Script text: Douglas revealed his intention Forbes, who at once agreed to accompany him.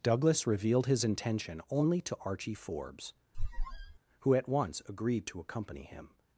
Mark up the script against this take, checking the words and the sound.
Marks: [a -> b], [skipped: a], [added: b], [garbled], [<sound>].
Douglas revealed his intention [added: only to Archie] Forbes, [squeak] who at once agreed to accompany him.